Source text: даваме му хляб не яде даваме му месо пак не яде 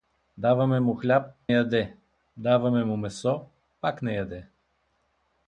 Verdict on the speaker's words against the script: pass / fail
fail